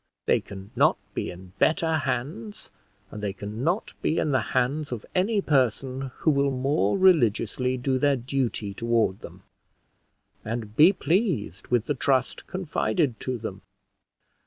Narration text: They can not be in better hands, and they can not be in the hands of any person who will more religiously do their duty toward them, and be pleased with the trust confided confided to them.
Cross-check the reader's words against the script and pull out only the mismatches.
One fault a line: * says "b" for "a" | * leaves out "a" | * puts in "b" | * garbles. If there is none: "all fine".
* leaves out "confided"